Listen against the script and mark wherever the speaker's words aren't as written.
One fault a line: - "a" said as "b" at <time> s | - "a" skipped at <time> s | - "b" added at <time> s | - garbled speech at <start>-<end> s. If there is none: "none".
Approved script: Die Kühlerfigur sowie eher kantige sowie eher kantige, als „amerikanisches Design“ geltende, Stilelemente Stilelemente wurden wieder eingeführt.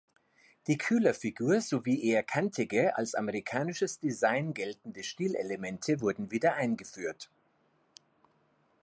- "sowie eher kantige" skipped at 3.0 s
- "Stilelemente" skipped at 6.0 s